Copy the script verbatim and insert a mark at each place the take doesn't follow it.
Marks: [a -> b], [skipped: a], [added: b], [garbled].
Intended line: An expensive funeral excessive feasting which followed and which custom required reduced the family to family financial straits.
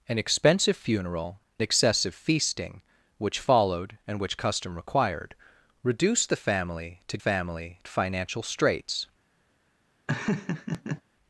An expensive funeral excessive feasting which followed and which custom required reduced the family to family financial straits.